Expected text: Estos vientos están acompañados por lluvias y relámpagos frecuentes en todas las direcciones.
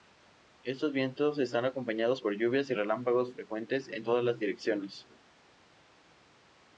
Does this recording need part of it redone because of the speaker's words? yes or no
no